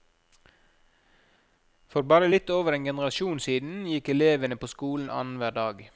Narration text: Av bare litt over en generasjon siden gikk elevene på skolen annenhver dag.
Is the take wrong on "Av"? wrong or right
wrong